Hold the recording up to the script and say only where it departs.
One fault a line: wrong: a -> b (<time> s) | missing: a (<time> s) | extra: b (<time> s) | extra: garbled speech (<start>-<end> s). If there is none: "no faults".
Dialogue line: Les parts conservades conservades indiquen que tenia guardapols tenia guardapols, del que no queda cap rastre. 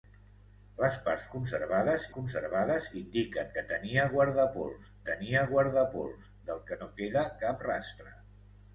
no faults